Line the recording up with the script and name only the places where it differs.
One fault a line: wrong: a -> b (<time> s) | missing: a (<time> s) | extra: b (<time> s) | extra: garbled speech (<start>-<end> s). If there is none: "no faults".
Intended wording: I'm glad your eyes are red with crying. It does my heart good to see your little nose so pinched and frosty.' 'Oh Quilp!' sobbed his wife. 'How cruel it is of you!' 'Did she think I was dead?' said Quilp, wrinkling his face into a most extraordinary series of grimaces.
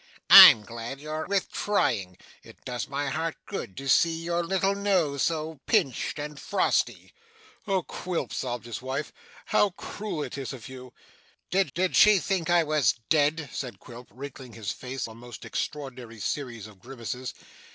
missing: eyes are red (1.3 s)
extra: did (11.7 s)
missing: into (15.1 s)